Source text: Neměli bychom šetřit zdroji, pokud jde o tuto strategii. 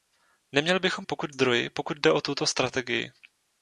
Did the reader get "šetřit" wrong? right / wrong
wrong